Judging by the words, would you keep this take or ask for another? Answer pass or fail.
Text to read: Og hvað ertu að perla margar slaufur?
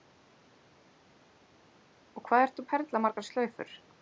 pass